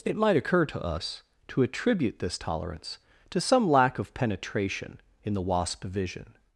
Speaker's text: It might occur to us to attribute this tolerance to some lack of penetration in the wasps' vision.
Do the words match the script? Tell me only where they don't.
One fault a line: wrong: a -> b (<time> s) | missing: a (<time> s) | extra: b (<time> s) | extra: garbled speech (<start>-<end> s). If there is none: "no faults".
wrong: wasps -> wasp (5.4 s)